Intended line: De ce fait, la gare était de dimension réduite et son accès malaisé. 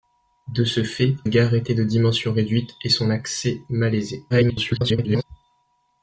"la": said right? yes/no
no